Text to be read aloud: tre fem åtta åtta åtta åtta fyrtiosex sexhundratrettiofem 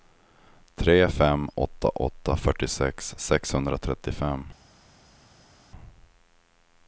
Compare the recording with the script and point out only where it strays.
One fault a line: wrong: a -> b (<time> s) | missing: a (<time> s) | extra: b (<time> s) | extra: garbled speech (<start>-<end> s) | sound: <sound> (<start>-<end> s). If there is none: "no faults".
missing: åtta åtta (2.4 s)